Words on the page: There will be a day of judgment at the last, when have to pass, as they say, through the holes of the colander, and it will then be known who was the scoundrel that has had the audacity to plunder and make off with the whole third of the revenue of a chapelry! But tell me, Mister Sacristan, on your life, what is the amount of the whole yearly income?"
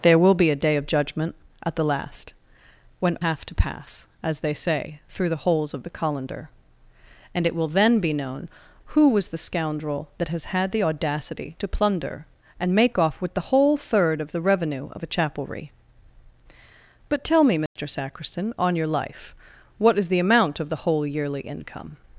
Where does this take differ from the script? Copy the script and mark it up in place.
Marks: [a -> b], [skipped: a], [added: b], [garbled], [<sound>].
There will be a day of judgment at the last, when have to pass, as they say, through the holes of the colander, and it will then be known who was the scoundrel that has had the audacity to plunder and make off with the whole third of the revenue of a chapelry! But tell me, Mister [dropout] Sacristan, on your life, what is the amount of the whole yearly income?"